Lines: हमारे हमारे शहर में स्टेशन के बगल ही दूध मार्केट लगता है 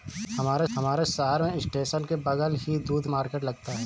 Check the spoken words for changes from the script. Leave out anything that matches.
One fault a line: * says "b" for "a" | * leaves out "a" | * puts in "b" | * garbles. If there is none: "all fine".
all fine